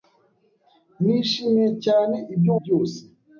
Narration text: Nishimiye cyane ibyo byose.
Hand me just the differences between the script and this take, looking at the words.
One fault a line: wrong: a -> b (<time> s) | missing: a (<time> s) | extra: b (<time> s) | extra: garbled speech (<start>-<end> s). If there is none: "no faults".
no faults